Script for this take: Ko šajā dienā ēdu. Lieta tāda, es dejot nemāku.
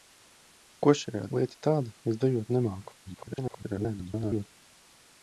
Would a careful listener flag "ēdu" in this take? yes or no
yes